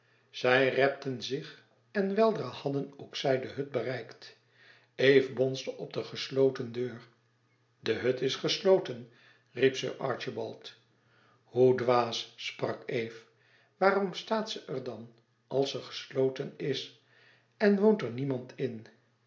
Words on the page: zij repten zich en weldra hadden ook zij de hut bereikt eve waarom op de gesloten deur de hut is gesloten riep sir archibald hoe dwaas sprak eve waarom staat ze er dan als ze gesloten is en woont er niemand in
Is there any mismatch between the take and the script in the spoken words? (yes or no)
yes